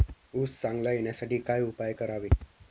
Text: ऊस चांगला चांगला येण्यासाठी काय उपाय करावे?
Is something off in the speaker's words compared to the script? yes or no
yes